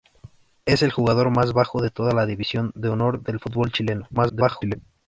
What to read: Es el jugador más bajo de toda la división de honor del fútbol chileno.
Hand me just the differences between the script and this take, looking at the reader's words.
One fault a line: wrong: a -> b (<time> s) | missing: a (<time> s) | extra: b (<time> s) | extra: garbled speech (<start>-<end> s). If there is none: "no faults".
extra: garbled speech (4.1-4.8 s)